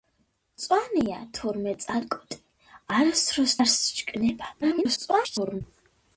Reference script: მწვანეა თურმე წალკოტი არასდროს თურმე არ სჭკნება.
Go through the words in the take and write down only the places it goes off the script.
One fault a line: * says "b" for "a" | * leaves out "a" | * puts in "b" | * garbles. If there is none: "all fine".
* leaves out "თურმე"
* garbles